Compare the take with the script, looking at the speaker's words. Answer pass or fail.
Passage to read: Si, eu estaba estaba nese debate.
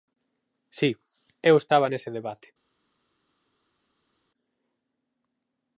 fail